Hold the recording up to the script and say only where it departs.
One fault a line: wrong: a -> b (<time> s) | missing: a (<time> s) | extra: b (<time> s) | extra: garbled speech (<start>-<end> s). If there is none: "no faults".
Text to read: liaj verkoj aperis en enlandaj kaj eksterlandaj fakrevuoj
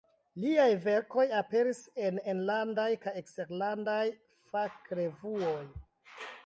no faults